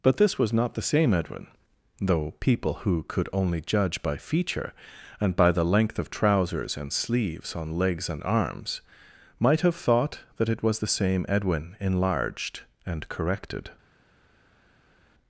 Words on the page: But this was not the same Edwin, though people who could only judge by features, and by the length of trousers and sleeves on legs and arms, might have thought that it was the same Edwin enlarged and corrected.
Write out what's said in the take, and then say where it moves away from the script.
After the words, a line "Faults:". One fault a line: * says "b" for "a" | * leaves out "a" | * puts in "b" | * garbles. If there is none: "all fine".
But this was not the same Edwin, though people who could only judge by feature, and by the length of trousers and sleeves on legs and arms, might have thought that it was the same Edwin enlarged and corrected.
Faults:
* says "feature" for "features"